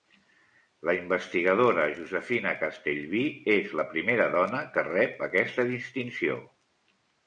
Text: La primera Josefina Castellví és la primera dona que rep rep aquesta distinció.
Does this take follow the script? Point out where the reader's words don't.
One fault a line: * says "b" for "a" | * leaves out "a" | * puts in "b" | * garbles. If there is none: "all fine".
* says "investigadora" for "primera"
* leaves out "rep"